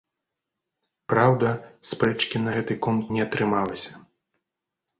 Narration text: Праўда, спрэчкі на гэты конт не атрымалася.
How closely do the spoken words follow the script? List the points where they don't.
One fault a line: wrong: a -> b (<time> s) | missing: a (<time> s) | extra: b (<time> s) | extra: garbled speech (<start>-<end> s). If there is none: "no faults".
no faults